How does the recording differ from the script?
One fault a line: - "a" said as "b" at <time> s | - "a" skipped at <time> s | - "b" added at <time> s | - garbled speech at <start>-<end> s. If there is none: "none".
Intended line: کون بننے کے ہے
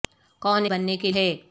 none